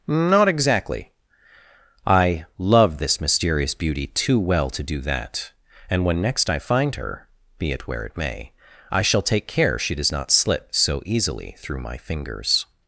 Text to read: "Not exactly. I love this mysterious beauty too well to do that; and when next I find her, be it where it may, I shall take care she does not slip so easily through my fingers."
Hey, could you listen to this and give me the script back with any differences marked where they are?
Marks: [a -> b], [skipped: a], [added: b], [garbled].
"Not exactly. I love this mysterious beauty too well to do that; and when next I find her, be it where it may, I shall take care she does not slip so easily through my fingers."